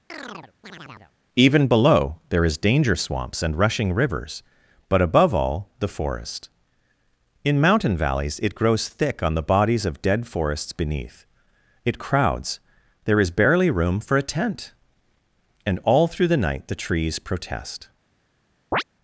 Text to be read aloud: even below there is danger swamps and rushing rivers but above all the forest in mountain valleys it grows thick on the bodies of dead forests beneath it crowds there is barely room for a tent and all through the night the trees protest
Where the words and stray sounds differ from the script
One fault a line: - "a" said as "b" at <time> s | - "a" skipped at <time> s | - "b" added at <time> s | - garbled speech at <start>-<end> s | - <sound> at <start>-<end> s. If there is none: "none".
- chirp at 0.1-1.1 s
- chirp at 18.7-18.8 s